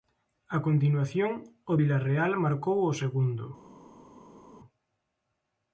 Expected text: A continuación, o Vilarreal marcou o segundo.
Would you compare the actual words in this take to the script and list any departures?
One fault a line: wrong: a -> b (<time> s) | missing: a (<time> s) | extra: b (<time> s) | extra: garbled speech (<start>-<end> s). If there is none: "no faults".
no faults